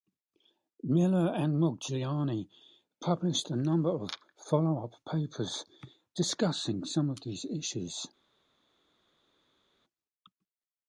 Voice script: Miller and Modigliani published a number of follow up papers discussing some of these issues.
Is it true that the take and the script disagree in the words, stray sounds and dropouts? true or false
false